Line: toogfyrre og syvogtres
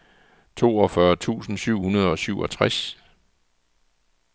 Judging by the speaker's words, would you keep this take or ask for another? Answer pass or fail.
fail